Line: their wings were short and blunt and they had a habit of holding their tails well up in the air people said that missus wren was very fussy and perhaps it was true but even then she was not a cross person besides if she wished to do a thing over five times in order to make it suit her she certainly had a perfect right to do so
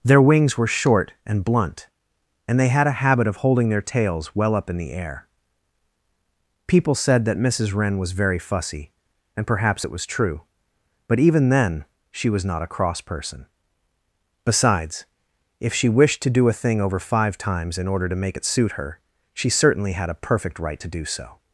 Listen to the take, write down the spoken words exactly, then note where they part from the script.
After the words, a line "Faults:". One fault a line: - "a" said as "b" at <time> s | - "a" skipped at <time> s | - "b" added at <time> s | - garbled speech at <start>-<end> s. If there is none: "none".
their wings were short and blunt and they had a habit of holding their tails well up in the air people said that missus wren was very fussy and perhaps it was true but even then she was not a cross person besides if she wished to do a thing over five times in order to make it suit her she certainly had a perfect right to do so
Faults:
none